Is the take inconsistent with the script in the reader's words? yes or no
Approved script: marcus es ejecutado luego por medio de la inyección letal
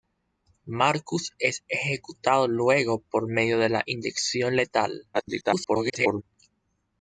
yes